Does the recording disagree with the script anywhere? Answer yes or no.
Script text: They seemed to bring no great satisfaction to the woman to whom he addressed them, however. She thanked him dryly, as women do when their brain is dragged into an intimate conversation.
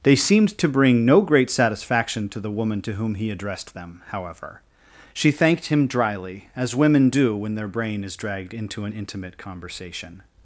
no